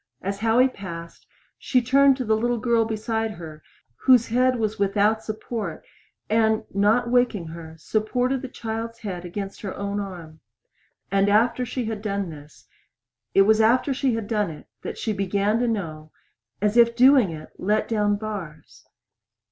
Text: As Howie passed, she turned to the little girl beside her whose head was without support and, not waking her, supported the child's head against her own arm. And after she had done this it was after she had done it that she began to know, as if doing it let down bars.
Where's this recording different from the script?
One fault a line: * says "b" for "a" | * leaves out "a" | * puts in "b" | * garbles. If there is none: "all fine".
all fine